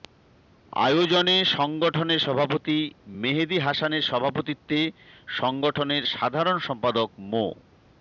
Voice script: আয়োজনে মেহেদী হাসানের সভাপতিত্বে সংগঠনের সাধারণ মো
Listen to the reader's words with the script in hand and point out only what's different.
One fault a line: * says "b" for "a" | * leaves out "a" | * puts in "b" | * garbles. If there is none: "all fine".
* puts in "সংগঠনের সভাপতি"
* puts in "সম্পাদক"